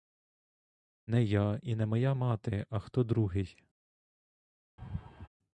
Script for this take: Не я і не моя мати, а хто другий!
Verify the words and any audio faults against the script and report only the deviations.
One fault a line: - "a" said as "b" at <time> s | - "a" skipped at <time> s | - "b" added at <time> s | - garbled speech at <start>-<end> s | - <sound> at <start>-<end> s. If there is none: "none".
- laugh at 4.8-5.3 s